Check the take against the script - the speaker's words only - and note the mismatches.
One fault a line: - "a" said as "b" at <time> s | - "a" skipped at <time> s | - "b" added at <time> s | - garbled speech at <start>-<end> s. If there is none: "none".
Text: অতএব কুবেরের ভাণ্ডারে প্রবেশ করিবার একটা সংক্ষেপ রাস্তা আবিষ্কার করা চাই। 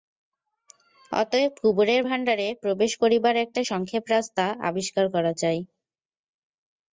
none